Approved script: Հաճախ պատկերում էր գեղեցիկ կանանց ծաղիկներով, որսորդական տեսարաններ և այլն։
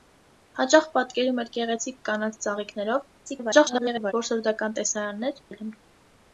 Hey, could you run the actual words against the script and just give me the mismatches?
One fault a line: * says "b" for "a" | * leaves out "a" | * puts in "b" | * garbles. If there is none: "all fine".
* garbles
* leaves out "և"